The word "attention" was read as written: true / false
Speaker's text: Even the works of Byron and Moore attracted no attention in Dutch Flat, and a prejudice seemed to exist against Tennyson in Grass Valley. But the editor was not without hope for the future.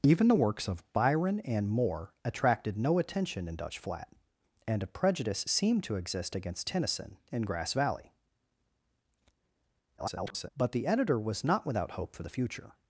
true